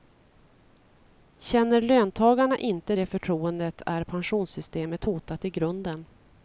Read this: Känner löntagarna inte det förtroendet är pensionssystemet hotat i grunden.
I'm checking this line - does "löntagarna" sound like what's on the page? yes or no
yes